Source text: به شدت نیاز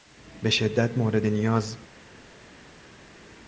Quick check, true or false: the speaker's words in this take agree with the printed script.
false